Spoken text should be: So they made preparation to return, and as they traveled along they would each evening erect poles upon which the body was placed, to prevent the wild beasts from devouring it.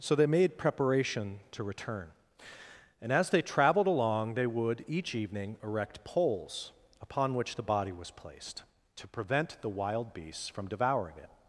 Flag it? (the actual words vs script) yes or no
no